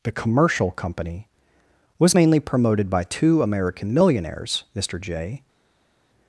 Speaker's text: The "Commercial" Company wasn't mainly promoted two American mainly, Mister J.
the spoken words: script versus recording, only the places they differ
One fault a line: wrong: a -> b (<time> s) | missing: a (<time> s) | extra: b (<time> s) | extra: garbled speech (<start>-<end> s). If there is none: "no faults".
wrong: wasn't -> was (2.0 s)
extra: by (2.9 s)
wrong: mainly -> millionaires (3.9 s)